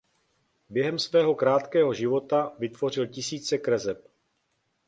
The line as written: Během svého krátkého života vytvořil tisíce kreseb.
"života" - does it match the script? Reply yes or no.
yes